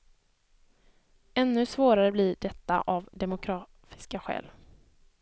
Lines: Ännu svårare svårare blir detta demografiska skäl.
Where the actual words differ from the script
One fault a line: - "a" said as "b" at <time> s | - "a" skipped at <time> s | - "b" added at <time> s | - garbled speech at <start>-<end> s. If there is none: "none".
- "svårare" skipped at 2.1 s
- "av" added at 2.8 s